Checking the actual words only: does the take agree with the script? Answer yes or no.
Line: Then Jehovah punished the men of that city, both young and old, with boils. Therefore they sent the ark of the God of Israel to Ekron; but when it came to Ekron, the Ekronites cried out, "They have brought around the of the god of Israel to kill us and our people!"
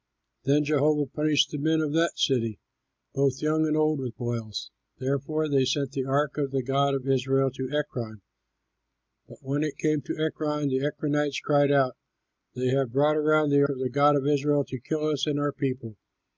yes